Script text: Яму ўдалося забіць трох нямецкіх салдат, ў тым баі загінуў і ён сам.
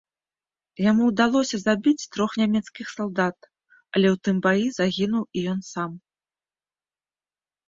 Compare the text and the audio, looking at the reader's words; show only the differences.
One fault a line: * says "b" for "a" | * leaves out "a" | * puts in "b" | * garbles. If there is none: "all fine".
* puts in "але"